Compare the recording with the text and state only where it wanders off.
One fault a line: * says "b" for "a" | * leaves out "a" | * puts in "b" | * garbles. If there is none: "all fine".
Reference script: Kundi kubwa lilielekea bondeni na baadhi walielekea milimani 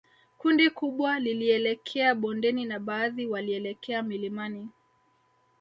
all fine